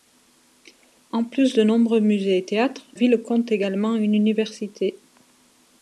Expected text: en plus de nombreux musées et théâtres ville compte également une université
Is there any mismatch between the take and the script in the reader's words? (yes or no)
no